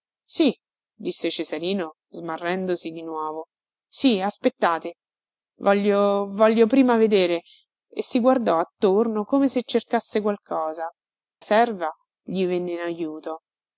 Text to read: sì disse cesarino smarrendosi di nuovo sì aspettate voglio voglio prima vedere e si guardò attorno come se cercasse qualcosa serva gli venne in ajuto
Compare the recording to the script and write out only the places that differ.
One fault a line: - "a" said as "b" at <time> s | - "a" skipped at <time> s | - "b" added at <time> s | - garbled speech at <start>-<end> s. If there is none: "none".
none